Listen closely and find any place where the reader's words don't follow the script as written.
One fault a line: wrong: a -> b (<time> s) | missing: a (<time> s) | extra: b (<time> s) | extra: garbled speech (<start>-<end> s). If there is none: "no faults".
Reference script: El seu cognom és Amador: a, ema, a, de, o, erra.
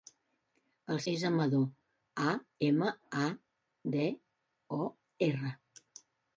missing: seu cognom (1.0 s)